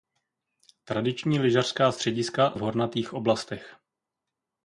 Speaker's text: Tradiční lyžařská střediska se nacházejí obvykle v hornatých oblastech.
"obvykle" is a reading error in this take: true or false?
true